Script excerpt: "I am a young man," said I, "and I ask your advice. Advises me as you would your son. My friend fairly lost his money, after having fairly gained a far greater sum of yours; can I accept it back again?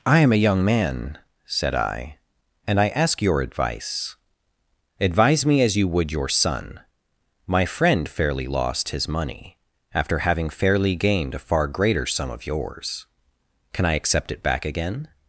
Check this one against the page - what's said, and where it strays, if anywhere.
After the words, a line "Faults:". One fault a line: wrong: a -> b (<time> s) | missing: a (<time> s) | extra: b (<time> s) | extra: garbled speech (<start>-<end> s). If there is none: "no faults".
"I am a young man," said I, "and I ask your advice. Advise me as you would your son. My friend fairly lost his money, after having fairly gained a far greater sum of yours; can I accept it back again?
Faults:
wrong: Advises -> Advise (5.0 s)